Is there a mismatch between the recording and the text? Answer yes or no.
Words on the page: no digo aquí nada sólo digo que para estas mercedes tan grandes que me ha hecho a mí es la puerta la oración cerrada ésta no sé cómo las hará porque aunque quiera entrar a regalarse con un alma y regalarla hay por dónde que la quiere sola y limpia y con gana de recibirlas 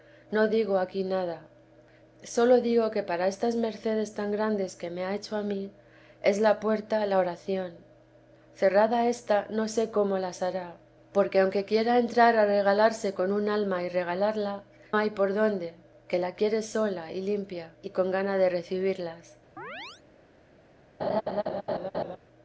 no